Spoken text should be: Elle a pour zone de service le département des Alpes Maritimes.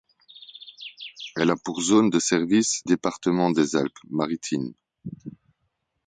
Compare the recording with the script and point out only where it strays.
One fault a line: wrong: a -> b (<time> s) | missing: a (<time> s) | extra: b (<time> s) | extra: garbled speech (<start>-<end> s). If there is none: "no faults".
missing: le (2.9 s)